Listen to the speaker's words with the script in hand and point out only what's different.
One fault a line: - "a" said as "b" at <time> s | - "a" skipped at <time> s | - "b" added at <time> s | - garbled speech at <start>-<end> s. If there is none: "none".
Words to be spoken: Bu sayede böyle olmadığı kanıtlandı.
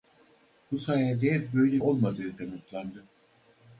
none